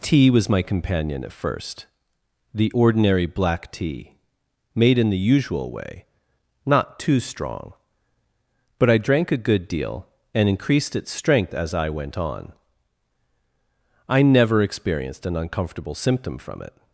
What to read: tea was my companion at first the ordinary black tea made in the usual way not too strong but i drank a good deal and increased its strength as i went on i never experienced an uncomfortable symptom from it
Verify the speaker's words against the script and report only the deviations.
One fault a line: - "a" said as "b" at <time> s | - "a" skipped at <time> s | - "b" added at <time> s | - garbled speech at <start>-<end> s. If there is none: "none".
none